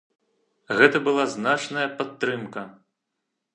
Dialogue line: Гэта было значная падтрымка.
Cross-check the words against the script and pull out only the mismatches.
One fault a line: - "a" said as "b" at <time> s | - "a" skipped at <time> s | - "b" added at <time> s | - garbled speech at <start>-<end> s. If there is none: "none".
- "было" said as "была" at 1.1 s